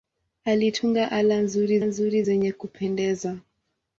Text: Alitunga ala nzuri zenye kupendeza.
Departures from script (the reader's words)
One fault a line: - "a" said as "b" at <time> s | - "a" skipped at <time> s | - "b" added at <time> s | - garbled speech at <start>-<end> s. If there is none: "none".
- "nzuri" added at 1.8 s